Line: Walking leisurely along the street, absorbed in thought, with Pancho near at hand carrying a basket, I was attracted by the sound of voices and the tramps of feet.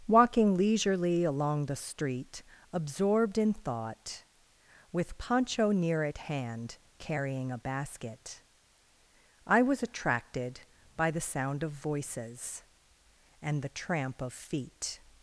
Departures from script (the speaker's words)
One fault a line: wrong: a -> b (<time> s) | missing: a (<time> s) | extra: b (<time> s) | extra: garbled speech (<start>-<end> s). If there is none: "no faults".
wrong: tramps -> tramp (13.7 s)